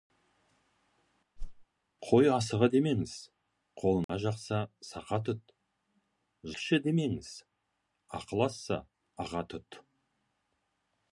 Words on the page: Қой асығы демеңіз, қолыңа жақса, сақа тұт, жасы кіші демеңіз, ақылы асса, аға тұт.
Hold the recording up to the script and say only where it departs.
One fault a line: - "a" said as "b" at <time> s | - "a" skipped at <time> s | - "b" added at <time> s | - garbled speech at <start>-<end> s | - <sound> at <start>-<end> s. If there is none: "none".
- whoosh at 1.4-1.7 s
- dropout at 4.0-4.1 s
- "жасы" skipped at 5.5 s